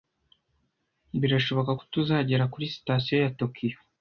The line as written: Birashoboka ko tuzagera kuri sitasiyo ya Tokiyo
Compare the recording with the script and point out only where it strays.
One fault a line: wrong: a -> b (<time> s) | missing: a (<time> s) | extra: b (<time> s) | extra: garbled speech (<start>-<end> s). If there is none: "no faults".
no faults